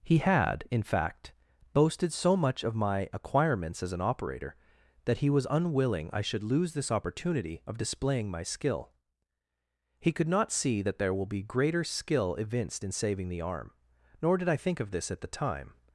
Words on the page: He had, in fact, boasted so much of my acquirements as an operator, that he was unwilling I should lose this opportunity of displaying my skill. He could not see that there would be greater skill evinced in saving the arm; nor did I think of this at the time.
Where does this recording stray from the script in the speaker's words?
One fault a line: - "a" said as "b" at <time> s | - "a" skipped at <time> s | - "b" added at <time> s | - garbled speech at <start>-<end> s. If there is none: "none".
- "would" said as "will" at 11.1 s